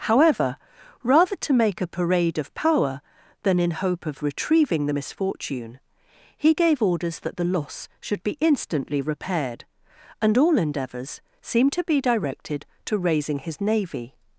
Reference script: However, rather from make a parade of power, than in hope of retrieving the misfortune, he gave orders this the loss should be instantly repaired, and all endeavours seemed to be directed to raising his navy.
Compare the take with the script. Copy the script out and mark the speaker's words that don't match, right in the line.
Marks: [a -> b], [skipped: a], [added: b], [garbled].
However, rather [from -> to] make a parade of power, than in hope of retrieving the misfortune, he gave orders [this -> that] the loss should be instantly repaired, and all endeavours seemed to be directed to raising his navy.